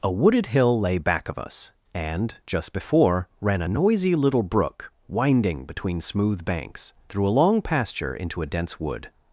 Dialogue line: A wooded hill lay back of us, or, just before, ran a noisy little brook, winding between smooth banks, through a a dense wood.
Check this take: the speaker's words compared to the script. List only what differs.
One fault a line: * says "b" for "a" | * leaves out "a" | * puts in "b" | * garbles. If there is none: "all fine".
* says "and" for "or"
* puts in "long pasture into"